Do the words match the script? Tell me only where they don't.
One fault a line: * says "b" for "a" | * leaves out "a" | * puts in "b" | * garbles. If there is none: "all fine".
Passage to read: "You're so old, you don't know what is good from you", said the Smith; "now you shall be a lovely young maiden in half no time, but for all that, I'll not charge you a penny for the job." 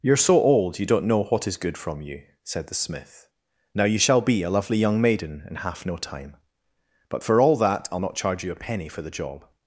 all fine